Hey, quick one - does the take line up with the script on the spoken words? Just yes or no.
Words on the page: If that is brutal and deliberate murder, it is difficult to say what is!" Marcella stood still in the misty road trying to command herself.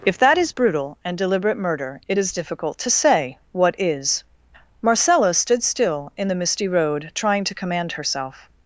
yes